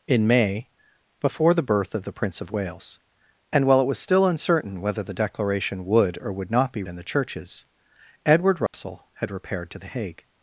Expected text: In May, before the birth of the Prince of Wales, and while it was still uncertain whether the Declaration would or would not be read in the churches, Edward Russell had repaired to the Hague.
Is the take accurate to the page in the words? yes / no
no